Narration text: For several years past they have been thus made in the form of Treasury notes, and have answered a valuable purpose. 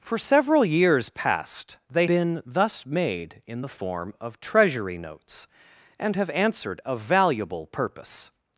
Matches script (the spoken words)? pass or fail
fail